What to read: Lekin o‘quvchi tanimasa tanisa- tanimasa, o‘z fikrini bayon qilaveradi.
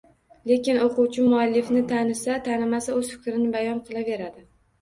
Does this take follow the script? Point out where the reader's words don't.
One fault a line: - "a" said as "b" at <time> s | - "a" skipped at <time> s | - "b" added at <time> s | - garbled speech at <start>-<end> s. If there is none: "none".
- "tanimasa" said as "muallifni" at 1.3 s